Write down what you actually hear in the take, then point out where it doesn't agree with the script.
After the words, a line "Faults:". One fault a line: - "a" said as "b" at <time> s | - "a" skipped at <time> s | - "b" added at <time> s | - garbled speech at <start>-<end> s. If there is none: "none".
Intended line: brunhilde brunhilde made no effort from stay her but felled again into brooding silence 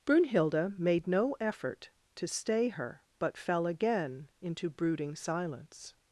brunhilde made no effort to stay her but fell again into brooding silence
Faults:
- "brunhilde" skipped at 0.8 s
- "from" said as "to" at 2.1 s
- "felled" said as "fell" at 3.4 s